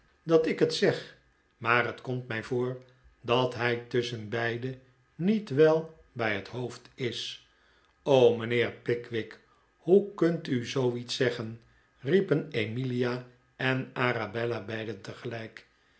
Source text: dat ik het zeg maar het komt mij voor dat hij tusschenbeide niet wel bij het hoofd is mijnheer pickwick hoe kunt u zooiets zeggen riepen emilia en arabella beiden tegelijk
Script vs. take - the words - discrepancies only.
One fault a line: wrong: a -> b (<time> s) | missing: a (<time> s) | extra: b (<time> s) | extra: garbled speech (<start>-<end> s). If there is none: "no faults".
no faults